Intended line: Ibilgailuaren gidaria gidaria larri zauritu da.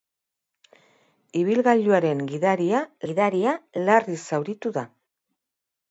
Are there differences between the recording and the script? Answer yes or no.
no